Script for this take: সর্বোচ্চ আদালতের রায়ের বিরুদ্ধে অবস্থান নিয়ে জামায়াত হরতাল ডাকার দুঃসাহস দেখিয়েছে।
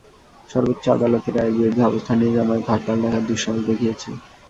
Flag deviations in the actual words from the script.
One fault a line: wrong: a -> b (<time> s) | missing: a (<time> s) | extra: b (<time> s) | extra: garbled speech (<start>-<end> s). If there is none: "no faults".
no faults